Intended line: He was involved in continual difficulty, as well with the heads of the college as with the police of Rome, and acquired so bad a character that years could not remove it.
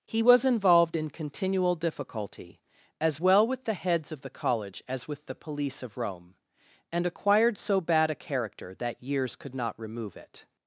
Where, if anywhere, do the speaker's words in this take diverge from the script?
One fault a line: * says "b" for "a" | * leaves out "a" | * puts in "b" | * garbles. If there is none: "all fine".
all fine